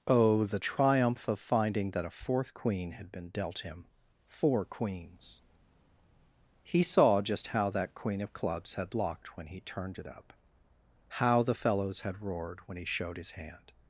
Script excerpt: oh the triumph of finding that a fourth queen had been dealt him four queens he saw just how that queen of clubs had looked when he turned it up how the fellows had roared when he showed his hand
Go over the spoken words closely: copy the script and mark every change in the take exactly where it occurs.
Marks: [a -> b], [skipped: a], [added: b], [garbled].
oh the triumph of finding that a fourth queen had been dealt him four queens he saw just how that queen of clubs had [looked -> locked] when he turned it up how the fellows had roared when he showed his hand